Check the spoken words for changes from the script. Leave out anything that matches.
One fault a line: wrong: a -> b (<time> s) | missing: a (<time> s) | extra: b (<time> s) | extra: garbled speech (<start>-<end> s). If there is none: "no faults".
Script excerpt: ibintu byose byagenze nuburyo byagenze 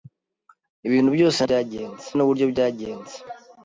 no faults